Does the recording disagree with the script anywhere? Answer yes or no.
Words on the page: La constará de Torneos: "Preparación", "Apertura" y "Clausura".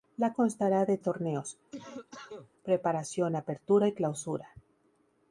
no